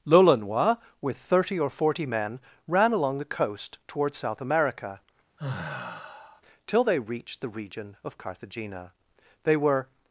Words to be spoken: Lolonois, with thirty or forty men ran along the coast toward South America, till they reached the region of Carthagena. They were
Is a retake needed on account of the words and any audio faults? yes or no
yes